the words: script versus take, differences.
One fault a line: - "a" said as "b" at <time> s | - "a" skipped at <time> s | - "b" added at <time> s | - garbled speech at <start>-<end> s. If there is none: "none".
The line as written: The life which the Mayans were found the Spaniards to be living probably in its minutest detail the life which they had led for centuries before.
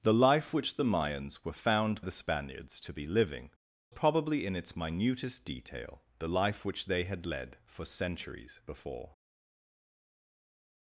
none